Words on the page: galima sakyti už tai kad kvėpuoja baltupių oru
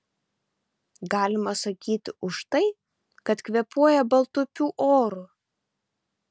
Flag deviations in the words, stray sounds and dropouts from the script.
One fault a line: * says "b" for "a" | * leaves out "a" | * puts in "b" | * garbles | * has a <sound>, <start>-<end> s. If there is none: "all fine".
all fine